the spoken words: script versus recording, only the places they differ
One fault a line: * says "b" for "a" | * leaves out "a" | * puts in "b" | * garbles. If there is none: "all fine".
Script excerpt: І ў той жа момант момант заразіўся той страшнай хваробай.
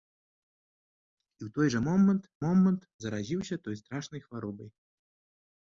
all fine